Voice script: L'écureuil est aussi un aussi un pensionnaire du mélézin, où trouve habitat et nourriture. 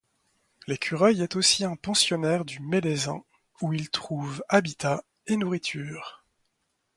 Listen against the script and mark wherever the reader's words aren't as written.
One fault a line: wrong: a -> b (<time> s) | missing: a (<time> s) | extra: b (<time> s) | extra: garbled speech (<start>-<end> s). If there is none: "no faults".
missing: aussi un (1.8 s)
extra: il (3.7 s)